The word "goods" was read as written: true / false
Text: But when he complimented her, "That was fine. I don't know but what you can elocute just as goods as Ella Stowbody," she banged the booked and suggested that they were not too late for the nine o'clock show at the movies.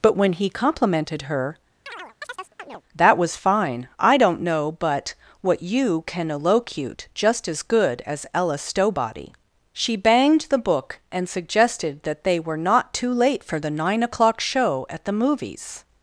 false